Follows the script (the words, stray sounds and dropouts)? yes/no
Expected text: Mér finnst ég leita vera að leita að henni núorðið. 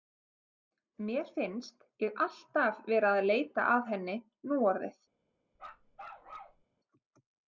no